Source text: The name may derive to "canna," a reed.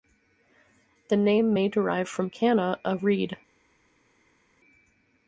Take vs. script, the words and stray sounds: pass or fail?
fail